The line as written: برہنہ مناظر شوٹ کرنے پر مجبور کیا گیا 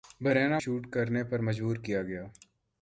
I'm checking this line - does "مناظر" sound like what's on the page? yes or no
no